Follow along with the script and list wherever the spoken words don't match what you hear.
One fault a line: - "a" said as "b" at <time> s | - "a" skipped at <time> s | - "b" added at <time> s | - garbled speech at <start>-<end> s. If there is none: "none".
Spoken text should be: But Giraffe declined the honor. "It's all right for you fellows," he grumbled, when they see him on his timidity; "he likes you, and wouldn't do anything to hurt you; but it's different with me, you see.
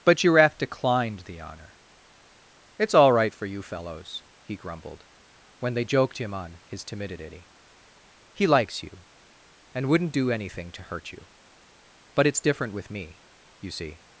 - "see" said as "joked" at 5.8 s